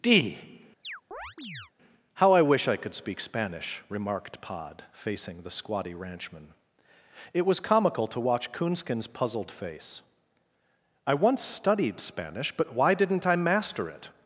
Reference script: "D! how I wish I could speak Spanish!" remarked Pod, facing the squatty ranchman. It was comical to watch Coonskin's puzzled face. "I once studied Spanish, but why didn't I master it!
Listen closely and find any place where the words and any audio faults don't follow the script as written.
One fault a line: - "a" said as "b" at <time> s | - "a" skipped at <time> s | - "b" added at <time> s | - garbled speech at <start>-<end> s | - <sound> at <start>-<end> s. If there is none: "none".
- chirp at 0.8-1.7 s